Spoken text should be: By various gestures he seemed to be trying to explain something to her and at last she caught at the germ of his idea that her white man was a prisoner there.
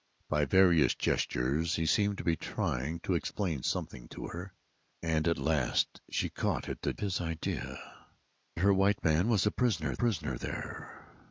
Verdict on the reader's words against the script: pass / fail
fail